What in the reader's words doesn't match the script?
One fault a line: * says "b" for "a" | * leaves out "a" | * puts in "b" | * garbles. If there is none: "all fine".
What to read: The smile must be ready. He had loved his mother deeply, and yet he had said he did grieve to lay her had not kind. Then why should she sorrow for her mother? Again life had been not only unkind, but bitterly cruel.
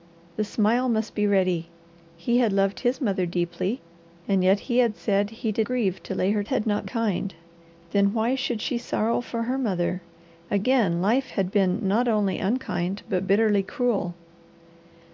all fine